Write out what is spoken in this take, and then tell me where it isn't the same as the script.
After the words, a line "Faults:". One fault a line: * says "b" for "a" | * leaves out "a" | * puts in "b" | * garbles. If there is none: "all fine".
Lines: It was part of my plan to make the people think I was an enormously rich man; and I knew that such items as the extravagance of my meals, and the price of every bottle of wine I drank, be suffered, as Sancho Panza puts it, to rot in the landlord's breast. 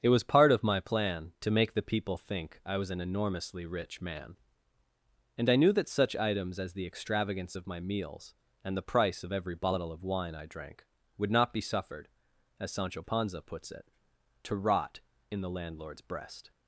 It was part of my plan to make the people think I was an enormously rich man; and I knew that such items as the extravagance of my meals, and the price of every bottle of wine I drank, would not be suffered, as Sancho Panza puts it, to rot in the landlord's breast.
Faults:
* puts in "would not"